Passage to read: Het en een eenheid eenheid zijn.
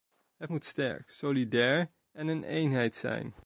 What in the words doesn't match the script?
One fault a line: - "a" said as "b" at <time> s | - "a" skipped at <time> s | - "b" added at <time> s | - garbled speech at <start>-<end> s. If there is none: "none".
- "moet sterk solidair" added at 0.5 s
- "eenheid" skipped at 2.9 s